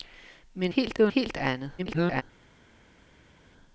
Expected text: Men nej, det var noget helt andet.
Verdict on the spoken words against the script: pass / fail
fail